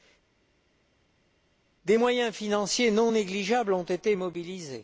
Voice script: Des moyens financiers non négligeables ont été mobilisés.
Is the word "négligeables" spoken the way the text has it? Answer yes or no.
yes